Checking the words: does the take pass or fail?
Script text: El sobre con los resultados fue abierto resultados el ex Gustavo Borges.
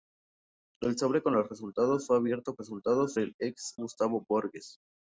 pass